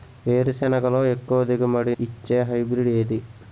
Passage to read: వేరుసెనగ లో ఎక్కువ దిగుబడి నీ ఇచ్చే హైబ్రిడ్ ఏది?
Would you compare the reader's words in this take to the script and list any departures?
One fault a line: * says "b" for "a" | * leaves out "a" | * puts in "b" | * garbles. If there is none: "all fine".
* leaves out "నీ"